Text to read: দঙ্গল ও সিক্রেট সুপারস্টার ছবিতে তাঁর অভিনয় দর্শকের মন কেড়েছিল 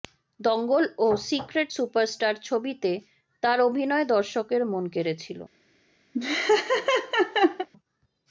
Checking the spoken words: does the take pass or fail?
pass